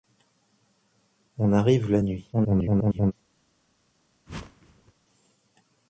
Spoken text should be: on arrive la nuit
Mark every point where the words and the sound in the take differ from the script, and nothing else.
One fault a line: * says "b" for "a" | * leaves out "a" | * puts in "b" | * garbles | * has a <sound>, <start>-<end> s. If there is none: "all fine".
* garbles
* has a whoosh, 4.3-4.9 s